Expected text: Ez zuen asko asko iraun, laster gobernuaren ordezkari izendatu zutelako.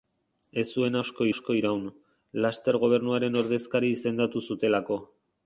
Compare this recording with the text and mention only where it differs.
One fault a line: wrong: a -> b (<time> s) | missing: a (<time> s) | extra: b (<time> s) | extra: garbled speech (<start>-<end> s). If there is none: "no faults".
no faults